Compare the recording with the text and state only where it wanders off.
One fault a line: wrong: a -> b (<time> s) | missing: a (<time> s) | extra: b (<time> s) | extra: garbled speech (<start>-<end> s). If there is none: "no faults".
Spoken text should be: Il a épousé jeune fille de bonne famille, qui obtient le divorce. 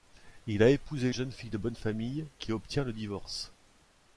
no faults